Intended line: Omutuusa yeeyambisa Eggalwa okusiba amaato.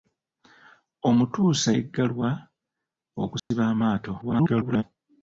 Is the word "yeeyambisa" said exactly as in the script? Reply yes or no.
no